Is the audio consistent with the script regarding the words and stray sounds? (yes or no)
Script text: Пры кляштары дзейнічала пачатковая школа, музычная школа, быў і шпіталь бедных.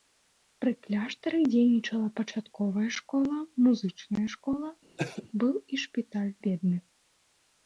no